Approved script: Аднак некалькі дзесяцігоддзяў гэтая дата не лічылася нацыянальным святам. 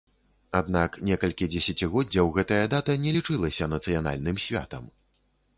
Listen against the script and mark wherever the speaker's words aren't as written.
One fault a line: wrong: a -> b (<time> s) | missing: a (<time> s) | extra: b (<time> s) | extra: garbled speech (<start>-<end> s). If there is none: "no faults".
no faults